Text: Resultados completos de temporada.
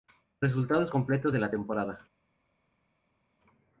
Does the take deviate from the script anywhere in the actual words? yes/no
yes